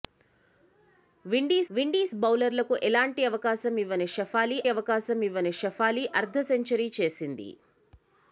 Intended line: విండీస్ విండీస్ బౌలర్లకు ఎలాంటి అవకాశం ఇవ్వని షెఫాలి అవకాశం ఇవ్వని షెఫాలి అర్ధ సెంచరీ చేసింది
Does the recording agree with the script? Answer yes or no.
yes